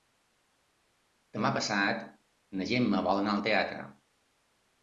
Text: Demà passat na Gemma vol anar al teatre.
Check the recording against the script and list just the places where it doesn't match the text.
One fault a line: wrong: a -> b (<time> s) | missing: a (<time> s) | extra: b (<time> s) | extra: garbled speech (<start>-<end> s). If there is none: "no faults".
no faults